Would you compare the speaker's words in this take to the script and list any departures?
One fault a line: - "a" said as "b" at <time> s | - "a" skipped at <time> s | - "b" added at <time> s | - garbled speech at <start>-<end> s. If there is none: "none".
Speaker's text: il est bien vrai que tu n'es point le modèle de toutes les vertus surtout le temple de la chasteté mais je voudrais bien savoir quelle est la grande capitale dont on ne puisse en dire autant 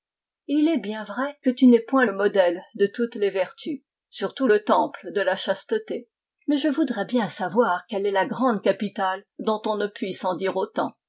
none